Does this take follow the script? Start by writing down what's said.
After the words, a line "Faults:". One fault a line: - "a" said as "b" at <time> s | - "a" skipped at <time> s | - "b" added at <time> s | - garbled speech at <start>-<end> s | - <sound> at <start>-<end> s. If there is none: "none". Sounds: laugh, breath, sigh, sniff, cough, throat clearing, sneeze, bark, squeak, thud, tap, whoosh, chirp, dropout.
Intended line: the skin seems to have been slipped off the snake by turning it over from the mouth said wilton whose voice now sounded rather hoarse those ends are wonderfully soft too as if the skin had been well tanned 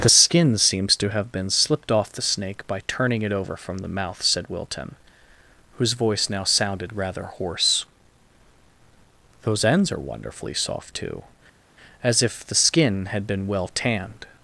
the skin seems to have been slipped off the snake by turning it over from the mouth said wilton whose voice now sounded rather hoarse those ends are wonderfully soft too as if the skin had been well tanned
Faults:
none